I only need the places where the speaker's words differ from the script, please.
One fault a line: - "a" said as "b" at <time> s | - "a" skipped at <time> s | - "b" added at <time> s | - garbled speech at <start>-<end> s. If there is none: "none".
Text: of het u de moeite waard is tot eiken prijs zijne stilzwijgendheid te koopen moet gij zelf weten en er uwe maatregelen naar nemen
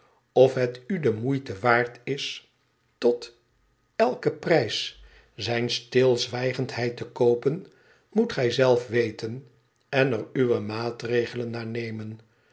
none